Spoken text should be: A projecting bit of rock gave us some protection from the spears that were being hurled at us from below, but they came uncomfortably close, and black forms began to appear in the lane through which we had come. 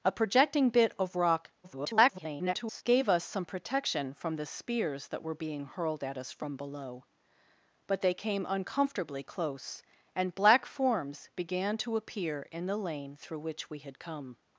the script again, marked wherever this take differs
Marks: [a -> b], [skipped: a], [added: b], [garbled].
A projecting bit of rock [garbled] gave us some protection from the spears that were being hurled at us from below, but they came uncomfortably close, and black forms began to appear in the lane through which we had come.